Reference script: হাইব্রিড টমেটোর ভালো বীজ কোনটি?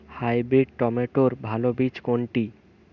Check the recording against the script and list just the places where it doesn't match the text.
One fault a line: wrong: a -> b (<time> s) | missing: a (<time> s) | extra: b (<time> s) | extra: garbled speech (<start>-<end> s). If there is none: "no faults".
no faults